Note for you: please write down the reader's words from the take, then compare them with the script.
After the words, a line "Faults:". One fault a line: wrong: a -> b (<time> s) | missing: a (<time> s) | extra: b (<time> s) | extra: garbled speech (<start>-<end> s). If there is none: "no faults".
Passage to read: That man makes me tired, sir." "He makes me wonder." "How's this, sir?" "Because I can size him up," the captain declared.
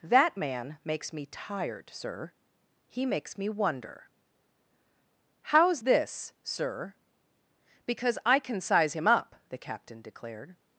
That man makes me tired, sir." "He makes me wonder." "How's this, sir?" "Because I can size him up," the captain declared.
Faults:
no faults